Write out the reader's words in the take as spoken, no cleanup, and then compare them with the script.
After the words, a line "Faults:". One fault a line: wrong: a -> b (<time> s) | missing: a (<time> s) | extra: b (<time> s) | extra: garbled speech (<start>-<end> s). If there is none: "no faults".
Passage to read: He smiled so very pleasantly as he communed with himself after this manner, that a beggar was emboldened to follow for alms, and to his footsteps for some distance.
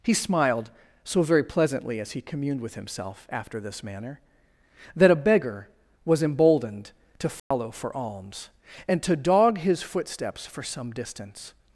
He smiled so very pleasantly as he communed with himself after this manner, that a beggar was emboldened to follow for alms, and to dog his footsteps for some distance.
Faults:
extra: dog (9.2 s)